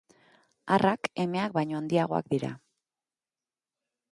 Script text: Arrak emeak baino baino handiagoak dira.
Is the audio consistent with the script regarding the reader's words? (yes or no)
no